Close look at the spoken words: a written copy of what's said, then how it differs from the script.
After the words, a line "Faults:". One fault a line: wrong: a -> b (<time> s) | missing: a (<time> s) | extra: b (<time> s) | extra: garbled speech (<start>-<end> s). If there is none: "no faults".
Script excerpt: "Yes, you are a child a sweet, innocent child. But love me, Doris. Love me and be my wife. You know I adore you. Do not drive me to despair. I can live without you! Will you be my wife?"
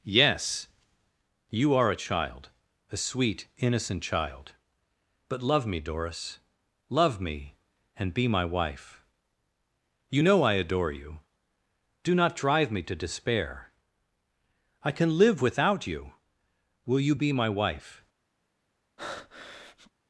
"Yes, you are a child a sweet, innocent child. But love me, Doris. Love me and be my wife. You know I adore you. Do not drive me to despair. I can live without you! Will you be my wife?"
Faults:
no faults